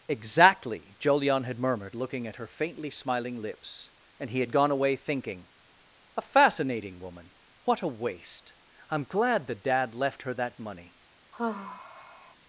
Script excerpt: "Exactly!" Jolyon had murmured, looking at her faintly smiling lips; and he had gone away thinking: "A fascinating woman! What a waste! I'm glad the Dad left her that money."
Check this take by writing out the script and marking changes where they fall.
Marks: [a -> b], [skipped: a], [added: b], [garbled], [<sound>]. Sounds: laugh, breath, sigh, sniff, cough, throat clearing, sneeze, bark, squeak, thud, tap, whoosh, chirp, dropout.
"Exactly!" Jolyon had murmured, looking at her faintly smiling lips; and he had gone away thinking: "A fascinating woman! What a waste! I'm glad the Dad left her that money." [sigh]